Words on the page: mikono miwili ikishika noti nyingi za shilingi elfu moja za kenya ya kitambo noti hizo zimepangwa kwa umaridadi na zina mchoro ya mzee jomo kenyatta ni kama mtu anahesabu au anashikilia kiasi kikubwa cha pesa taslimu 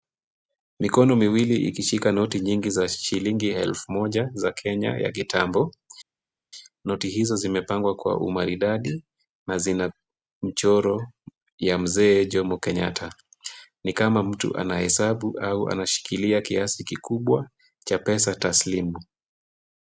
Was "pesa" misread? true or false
false